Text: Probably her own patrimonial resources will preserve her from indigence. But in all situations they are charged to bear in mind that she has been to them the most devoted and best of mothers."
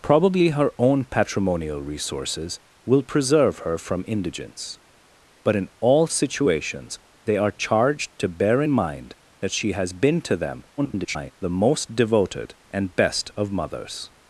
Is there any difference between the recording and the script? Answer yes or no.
yes